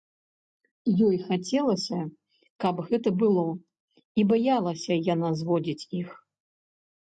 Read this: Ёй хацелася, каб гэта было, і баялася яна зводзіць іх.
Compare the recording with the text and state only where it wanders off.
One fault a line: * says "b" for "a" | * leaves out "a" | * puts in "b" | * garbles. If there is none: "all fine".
all fine